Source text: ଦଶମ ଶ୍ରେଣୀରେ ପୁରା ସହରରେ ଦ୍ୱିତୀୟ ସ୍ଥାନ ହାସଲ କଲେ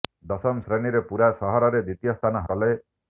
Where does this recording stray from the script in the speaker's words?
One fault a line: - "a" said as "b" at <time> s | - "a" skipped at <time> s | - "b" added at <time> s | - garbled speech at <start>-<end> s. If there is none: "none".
- "ହାସଲ" skipped at 2.5 s